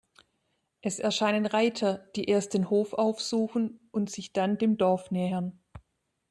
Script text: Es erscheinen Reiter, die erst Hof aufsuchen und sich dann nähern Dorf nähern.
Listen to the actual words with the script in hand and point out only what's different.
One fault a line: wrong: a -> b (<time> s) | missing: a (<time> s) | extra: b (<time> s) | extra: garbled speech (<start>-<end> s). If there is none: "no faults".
extra: den (2.5 s)
wrong: nähern -> dem (4.6 s)